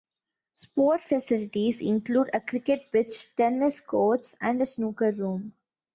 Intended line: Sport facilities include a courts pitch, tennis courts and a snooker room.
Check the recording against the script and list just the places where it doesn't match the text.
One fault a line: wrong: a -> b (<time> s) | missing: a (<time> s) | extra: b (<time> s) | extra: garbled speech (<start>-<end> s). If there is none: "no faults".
wrong: courts -> cricket (2.4 s)